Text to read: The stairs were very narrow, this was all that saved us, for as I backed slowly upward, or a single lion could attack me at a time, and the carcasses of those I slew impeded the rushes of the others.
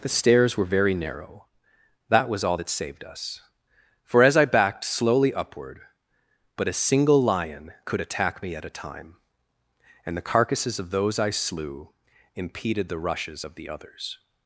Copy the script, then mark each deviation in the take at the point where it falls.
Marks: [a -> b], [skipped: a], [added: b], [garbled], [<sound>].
The stairs were very narrow, [this -> that] was all that saved us, for as I backed slowly upward, [or -> but] a single lion could attack me at a time, and the carcasses of those I slew impeded the rushes of the others.